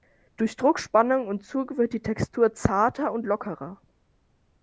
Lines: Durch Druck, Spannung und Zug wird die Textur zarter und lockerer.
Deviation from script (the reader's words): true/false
false